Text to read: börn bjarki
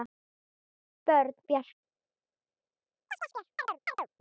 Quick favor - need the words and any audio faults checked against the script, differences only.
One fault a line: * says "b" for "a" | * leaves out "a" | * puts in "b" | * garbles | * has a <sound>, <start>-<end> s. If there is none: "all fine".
* has a chirp, 3.1-4.1 s